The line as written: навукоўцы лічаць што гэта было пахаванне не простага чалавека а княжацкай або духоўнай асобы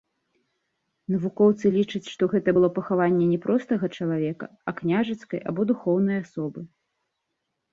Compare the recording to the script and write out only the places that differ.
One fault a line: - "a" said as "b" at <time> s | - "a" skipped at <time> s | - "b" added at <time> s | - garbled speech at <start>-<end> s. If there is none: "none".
none